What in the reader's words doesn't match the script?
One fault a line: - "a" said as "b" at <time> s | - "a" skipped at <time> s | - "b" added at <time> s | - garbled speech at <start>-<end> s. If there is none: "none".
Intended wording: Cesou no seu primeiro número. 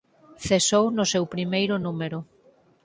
none